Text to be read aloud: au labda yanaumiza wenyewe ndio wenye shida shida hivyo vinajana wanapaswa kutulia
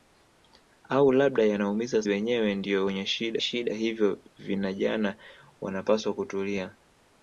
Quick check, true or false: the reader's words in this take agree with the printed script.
true